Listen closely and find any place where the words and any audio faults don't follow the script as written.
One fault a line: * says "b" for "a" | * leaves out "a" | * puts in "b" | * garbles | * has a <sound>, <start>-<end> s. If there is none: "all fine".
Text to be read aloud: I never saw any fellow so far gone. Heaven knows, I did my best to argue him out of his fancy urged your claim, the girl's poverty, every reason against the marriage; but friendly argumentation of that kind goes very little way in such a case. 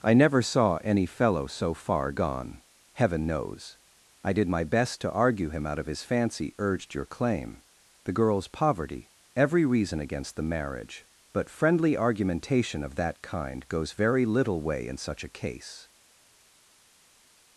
all fine